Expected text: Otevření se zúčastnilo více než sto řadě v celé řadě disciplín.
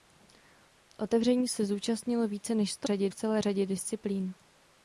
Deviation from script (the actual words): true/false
false